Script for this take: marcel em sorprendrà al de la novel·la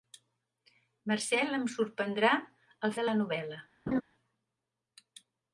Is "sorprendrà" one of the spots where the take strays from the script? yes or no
no